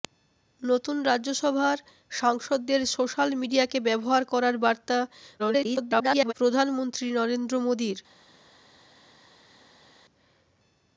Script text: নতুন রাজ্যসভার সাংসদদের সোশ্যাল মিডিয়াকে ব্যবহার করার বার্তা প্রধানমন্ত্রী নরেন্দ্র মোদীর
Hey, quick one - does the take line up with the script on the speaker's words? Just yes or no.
no